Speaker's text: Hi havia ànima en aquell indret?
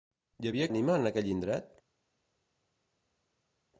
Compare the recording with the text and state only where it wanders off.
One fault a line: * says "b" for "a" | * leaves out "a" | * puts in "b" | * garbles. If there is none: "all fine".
all fine